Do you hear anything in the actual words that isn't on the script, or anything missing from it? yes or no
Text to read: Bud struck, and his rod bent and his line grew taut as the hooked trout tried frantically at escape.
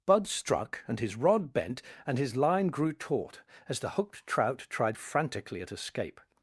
no